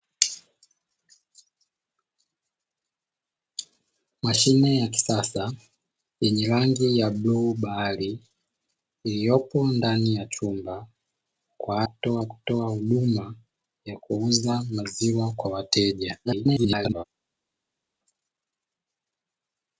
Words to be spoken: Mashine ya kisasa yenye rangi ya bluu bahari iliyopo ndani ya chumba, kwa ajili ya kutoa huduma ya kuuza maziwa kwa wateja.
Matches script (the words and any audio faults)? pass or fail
fail